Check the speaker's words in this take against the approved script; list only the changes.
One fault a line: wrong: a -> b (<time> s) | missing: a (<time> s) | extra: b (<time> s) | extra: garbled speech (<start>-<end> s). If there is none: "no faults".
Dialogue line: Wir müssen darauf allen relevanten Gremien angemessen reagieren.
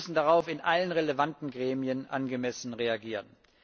extra: in (0.5 s)